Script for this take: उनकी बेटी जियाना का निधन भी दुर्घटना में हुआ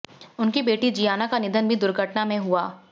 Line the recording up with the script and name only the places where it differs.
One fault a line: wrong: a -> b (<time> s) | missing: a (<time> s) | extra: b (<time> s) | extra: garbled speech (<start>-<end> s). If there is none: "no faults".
no faults